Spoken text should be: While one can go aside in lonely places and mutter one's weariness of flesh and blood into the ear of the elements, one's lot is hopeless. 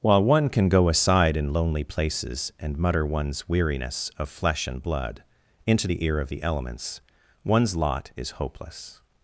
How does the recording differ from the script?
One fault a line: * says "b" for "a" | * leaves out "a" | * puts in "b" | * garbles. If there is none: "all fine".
all fine